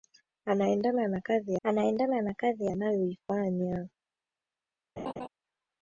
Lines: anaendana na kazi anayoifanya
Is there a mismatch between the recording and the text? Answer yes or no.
yes